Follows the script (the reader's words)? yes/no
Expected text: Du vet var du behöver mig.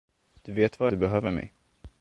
yes